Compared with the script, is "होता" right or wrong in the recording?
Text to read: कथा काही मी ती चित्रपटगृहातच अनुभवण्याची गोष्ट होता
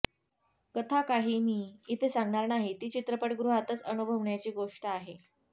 wrong